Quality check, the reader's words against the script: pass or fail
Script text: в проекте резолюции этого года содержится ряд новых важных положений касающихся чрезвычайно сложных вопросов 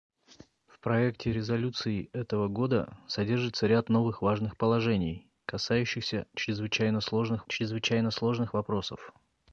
fail